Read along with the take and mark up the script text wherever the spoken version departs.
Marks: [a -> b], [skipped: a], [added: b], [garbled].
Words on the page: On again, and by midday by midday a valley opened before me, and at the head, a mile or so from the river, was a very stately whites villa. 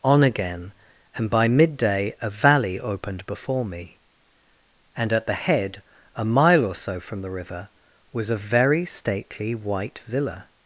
On again, and by midday [skipped: by midday] a valley opened before me, and at the head, a mile or so from the river, was a very stately [whites -> white] villa.